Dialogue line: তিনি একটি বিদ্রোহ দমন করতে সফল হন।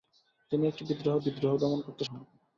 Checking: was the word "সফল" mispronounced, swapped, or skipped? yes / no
yes